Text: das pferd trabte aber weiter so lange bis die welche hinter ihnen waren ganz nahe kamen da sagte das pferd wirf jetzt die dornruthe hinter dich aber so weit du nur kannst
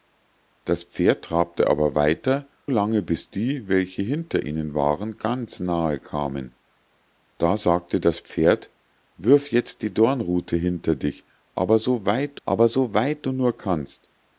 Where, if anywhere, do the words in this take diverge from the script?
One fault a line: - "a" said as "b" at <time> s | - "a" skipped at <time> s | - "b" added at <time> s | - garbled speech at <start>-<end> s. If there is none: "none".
- "so" skipped at 2.5 s
- "aber so weit" added at 12.4 s